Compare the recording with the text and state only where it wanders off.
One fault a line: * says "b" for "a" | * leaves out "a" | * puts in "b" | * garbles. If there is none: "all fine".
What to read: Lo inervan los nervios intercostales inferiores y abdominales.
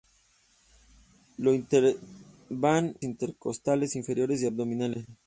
* leaves out "los nervios"